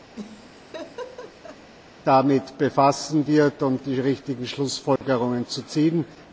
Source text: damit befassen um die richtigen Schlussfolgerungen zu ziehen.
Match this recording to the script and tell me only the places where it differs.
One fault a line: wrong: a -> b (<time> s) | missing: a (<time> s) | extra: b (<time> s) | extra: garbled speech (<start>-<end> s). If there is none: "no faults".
extra: wird (3.3 s)